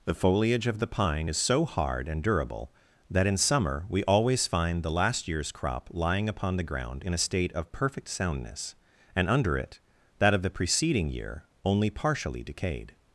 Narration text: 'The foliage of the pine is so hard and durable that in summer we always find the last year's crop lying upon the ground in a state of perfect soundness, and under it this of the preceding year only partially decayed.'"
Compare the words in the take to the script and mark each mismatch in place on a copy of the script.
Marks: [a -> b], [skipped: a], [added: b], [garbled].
'The foliage of the pine is so hard and durable that in summer we always find the last year's crop lying upon the ground in a state of perfect soundness, and under it [this -> that] of the preceding year only partially decayed.'"